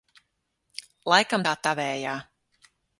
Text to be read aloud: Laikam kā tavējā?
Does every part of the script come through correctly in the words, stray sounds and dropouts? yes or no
yes